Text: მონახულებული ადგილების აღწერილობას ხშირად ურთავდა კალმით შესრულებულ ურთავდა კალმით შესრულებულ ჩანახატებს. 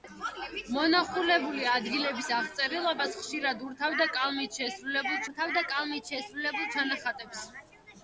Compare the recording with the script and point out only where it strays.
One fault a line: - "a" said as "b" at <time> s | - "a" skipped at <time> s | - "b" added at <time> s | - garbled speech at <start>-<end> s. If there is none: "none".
none